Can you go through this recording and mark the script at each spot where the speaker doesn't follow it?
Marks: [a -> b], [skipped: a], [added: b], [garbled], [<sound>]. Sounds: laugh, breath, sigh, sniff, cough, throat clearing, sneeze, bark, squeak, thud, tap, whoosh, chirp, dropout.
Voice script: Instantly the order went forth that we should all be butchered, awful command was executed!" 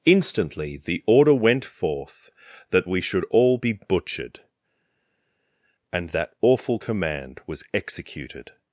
Instantly the order went forth that we should all be butchered, [added: and that] awful command was executed!"